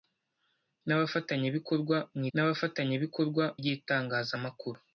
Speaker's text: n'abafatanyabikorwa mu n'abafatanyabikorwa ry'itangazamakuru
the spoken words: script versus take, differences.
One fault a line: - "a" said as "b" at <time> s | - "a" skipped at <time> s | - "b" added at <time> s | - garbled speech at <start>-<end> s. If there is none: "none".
none